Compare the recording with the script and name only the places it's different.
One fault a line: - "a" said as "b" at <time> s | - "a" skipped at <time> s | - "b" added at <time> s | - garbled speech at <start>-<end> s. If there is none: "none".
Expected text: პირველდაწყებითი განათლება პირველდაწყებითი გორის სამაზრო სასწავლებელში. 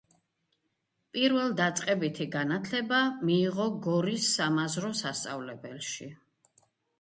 - "პირველდაწყებითი" said as "მიიღო" at 3.3 s